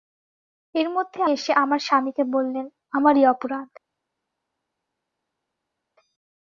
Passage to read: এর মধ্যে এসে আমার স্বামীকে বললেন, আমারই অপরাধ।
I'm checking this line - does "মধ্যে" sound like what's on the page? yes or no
yes